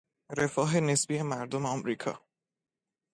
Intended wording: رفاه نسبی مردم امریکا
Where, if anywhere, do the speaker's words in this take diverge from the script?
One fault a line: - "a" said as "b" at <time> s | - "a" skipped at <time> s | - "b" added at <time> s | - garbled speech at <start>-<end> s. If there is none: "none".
none